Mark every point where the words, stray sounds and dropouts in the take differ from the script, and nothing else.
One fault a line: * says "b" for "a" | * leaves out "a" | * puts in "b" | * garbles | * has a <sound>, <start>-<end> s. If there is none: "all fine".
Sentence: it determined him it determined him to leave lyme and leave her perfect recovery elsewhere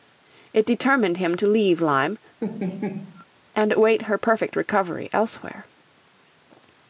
* leaves out "it determined him"
* has a laugh, 2.4-3.3 s
* says "await" for "leave"